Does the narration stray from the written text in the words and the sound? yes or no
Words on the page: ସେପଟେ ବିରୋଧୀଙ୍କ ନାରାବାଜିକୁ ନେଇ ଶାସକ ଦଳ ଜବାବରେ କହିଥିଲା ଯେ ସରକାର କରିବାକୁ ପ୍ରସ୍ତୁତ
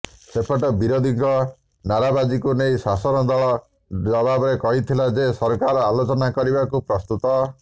yes